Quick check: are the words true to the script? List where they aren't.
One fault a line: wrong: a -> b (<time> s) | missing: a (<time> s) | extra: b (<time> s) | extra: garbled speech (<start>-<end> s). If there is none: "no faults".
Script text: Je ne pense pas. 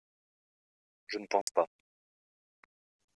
no faults